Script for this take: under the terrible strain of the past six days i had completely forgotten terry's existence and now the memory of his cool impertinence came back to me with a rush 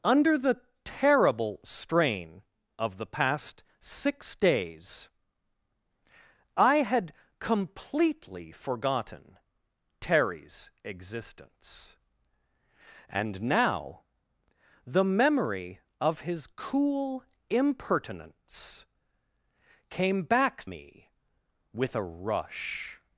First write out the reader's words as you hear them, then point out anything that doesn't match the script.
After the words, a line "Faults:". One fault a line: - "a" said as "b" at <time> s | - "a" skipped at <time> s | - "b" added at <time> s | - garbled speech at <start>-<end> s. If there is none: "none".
under the terrible strain of the past six days i had completely forgotten terry's existence and now the memory of his cool impertinence came back me with a rush
Faults:
- "to" skipped at 20.7 s